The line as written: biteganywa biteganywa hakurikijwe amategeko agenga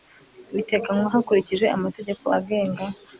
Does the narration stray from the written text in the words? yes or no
yes